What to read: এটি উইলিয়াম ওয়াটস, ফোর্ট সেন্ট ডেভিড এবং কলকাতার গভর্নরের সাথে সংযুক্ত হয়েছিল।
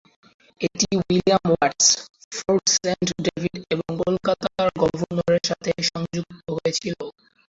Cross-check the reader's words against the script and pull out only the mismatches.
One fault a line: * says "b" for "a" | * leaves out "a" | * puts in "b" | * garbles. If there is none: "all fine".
all fine